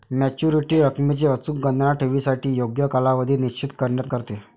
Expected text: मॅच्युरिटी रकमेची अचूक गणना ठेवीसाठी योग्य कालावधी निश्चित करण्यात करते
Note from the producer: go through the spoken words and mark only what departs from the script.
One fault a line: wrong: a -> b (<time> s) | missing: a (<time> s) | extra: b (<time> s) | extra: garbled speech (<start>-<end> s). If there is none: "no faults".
no faults